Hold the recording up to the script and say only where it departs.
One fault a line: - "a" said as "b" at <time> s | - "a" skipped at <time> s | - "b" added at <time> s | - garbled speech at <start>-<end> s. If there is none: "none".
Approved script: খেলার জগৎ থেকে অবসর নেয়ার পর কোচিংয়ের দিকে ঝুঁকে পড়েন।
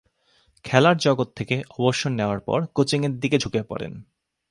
none